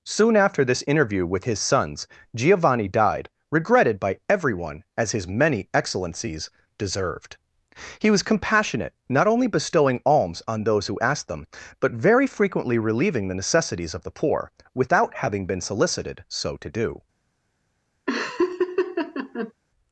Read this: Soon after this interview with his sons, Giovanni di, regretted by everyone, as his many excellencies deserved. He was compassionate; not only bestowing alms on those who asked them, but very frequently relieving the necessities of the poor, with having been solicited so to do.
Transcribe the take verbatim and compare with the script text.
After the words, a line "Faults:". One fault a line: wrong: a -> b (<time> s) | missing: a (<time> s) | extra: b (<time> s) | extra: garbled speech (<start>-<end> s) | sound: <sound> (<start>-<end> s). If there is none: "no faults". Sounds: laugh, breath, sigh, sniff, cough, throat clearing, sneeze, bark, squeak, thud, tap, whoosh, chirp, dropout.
Soon after this interview with his sons, Giovanni died, regretted by everyone, as his many excellencies deserved. He was compassionate; not only bestowing alms on those who asked them, but very frequently relieving the necessities of the poor, without having been solicited so to do.
Faults:
wrong: di -> died (2.9 s)
wrong: with -> without (14.7 s)
sound: laugh (18.1-19.5 s)